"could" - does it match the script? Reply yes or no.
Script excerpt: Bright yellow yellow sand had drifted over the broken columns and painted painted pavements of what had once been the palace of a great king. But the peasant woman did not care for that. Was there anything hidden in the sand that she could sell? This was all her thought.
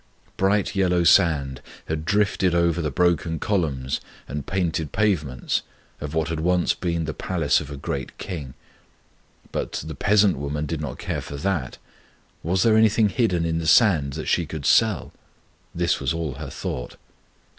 yes